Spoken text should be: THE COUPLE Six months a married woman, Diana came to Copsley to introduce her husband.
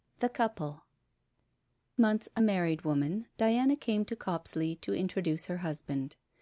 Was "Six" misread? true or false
true